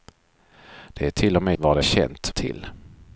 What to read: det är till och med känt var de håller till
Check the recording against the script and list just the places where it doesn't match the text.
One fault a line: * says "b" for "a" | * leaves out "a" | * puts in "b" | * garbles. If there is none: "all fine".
* leaves out "känt"
* says "känt" for "håller"